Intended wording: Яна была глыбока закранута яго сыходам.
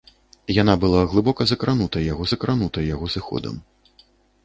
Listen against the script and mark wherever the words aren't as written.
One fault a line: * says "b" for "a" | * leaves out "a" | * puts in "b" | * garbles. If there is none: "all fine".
* puts in "закранута яго"